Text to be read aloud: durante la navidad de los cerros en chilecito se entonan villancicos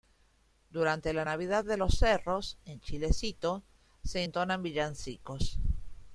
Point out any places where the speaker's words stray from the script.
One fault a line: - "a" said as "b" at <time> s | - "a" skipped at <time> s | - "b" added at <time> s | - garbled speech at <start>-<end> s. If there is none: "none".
none